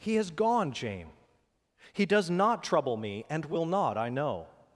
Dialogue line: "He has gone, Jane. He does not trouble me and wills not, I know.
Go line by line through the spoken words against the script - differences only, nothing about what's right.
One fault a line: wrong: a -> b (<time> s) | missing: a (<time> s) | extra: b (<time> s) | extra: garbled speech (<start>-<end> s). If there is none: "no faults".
wrong: wills -> will (3.5 s)